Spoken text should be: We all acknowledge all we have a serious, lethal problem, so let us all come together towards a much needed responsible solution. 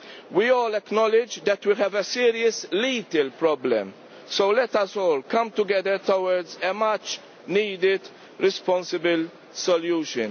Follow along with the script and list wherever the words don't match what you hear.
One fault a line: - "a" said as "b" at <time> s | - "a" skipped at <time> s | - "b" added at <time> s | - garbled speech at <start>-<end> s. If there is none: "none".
- "all" said as "that" at 1.4 s